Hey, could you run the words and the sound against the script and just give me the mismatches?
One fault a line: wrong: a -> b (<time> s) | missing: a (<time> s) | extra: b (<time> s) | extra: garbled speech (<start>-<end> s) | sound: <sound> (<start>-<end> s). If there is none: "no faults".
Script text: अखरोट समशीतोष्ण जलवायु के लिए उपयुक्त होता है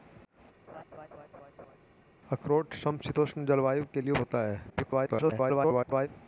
sound: laugh (0.7-1.8 s)
missing: उपयुक्त (4.1 s)
extra: garbled speech (4.7-6.1 s)